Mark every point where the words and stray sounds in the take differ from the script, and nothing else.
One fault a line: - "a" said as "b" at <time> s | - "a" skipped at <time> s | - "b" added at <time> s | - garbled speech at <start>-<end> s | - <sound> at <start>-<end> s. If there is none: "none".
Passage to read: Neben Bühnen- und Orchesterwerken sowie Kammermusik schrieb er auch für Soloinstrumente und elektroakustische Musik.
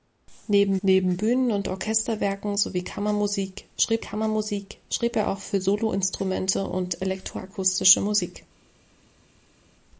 - "neben" added at 0.8 s
- "Kammermusik schrieb" added at 4.0 s